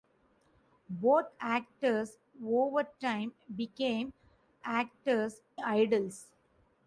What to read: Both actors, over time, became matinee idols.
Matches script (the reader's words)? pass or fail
fail